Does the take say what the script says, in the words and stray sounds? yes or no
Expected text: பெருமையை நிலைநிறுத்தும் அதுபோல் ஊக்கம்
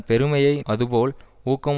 no